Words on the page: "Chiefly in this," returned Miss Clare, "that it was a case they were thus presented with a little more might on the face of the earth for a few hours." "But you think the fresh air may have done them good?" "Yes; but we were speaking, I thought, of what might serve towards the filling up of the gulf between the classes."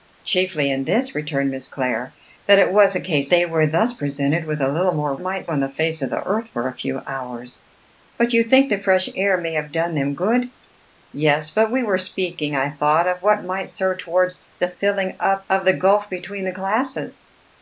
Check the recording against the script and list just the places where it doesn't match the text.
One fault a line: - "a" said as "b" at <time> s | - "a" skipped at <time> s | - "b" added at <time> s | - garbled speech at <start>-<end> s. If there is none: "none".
none